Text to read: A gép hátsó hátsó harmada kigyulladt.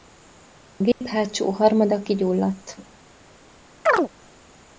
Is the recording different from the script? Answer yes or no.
yes